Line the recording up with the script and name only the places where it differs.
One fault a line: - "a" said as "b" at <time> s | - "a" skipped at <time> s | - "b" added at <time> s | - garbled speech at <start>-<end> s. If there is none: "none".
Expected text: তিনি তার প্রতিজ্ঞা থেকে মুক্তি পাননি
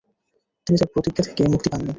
none